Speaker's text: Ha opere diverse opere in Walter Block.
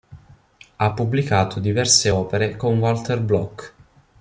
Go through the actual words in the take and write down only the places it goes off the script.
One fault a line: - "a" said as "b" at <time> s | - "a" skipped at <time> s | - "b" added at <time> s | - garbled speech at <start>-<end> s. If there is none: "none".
- "opere" said as "pubblicato" at 0.9 s
- "in" said as "con" at 2.6 s